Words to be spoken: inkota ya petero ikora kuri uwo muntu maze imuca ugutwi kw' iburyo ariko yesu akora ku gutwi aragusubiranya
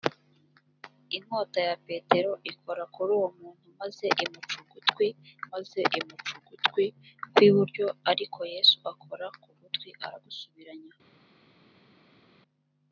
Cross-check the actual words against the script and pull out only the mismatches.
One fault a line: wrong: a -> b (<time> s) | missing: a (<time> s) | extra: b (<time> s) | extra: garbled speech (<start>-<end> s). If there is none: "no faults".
extra: maze imuca ugutwi (5.5 s)